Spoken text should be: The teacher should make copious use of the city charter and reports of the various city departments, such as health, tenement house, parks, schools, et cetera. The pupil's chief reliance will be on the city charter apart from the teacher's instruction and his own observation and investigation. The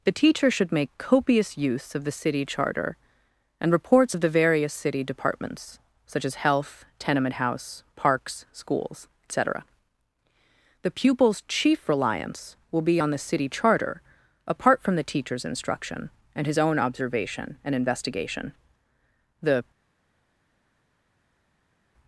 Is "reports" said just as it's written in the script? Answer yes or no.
yes